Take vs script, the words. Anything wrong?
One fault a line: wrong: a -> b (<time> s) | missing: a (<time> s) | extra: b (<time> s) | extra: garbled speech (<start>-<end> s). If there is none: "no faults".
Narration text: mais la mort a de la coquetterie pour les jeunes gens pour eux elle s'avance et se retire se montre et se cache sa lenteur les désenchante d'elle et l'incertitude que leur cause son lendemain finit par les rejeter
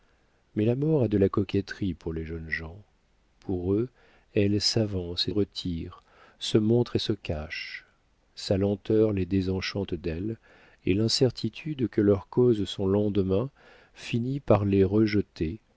missing: se (5.3 s)